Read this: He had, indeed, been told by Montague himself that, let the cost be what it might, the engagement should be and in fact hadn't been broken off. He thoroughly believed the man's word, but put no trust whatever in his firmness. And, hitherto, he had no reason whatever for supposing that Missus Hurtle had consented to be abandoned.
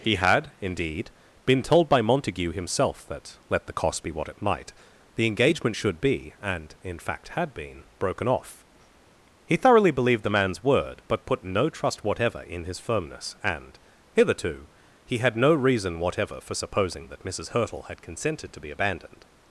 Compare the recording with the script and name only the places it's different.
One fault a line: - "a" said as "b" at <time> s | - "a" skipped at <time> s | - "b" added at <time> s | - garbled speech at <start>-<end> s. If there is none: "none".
- "hadn't" said as "had" at 7.3 s